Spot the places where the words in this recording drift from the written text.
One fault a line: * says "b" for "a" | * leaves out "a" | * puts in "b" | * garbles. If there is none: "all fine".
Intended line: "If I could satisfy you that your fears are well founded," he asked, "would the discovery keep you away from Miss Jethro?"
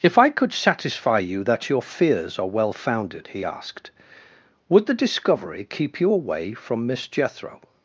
all fine